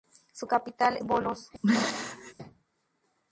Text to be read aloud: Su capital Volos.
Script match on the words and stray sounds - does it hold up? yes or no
no